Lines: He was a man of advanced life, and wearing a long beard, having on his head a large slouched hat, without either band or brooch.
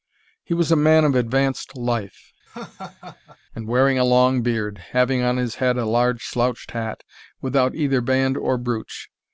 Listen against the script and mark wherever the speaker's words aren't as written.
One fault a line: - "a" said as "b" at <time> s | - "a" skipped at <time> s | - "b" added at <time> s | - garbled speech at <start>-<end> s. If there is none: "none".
none